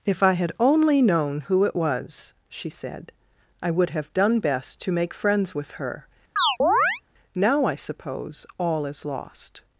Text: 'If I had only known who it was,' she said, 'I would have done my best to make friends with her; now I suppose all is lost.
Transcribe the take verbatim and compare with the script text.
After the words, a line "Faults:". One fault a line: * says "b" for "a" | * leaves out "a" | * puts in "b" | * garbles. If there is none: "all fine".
'If I had only known who it was,' she said, 'I would have done best to make friends with her; now I suppose all is lost.
Faults:
* leaves out "my"